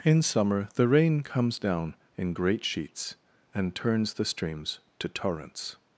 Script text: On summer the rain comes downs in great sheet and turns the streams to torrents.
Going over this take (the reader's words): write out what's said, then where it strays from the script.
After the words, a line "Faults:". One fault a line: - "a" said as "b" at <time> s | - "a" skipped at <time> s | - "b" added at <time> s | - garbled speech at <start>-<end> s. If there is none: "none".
In summer the rain comes down in great sheets and turns the streams to torrents.
Faults:
- "On" said as "In" at 0.0 s
- "downs" said as "down" at 1.6 s
- "sheet" said as "sheets" at 2.6 s